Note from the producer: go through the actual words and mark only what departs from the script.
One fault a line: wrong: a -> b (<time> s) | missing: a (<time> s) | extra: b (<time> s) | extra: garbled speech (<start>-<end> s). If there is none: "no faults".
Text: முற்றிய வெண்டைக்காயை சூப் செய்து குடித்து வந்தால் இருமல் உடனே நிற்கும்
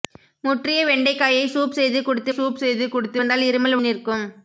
extra: சூப் செய்து குடித்து (2.3 s)
missing: உடனே (3.8 s)